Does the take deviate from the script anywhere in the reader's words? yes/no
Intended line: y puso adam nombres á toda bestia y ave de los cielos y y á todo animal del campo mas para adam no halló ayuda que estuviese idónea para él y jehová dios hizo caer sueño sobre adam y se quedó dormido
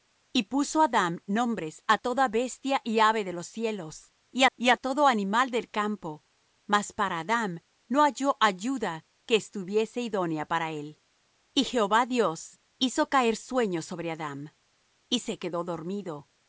no